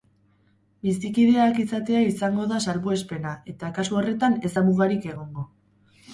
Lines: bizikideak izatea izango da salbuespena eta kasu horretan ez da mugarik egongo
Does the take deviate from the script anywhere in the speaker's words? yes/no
no